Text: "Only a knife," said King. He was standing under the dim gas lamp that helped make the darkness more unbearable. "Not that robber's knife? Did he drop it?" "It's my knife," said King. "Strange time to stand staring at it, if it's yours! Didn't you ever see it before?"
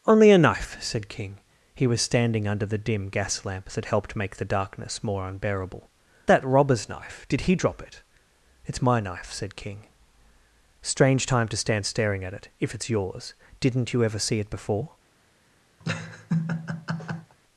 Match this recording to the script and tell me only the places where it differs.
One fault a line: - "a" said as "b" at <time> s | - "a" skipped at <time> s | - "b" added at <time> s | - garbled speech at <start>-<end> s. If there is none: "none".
- "Not" skipped at 5.9 s